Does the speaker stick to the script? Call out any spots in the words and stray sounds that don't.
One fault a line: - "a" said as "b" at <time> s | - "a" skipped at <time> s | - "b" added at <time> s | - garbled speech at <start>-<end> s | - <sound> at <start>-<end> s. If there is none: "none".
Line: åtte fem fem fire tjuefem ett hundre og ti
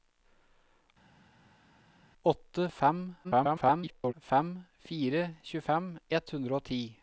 - garbled speech at 3.2-4.1 s